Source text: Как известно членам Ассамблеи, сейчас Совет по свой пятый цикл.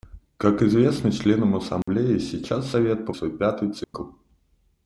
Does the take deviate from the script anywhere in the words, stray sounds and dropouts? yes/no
yes